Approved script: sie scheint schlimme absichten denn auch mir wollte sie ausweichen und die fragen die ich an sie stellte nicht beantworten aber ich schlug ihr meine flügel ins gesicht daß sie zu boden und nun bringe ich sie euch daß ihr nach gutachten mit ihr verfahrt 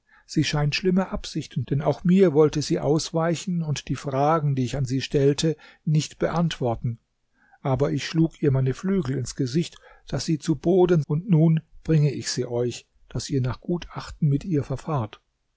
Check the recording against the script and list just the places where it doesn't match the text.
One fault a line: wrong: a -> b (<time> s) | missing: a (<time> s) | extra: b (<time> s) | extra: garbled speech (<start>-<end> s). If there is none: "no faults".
no faults